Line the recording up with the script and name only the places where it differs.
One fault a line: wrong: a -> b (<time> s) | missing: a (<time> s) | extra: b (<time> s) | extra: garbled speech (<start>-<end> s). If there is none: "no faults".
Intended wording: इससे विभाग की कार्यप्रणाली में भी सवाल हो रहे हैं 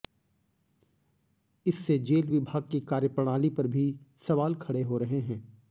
extra: जेल (2.0 s)
wrong: में -> पर (3.5 s)
extra: खड़े (4.6 s)